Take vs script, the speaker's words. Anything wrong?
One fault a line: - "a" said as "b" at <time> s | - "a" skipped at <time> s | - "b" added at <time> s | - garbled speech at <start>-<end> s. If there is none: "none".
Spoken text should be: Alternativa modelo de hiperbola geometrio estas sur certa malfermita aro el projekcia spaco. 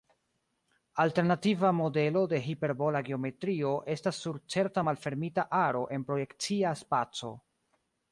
- "el" said as "en" at 5.9 s